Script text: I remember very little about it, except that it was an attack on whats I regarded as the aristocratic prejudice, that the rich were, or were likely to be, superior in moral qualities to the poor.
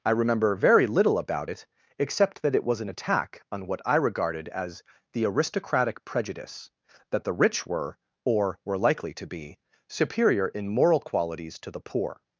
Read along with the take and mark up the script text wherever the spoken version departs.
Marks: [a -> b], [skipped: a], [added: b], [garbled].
I remember very little about it, except that it was an attack on [whats -> what] I regarded as the aristocratic prejudice, that the rich were, or were likely to be, superior in moral qualities to the poor.